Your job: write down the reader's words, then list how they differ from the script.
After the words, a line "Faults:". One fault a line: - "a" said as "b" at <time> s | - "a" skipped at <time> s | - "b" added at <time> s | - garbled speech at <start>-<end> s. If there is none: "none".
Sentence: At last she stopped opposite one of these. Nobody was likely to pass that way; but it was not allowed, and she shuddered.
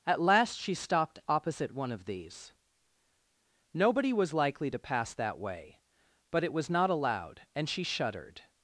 At last she stopped opposite one of these. Nobody was likely to pass that way; but it was not allowed, and she shuddered.
Faults:
none